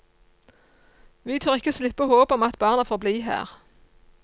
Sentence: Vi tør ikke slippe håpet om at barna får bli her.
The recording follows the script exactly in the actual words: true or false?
true